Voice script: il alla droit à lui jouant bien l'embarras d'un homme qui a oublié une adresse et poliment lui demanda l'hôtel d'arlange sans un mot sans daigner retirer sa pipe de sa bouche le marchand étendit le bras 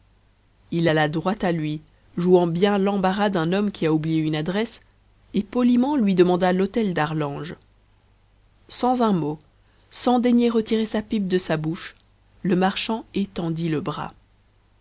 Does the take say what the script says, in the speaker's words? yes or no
yes